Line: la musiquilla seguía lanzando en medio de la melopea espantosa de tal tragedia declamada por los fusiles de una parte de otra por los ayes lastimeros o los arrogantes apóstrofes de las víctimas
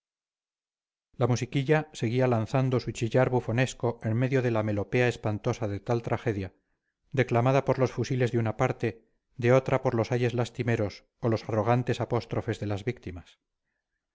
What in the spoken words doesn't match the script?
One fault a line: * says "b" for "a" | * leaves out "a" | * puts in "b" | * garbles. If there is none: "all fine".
* puts in "su chillar bufonesco"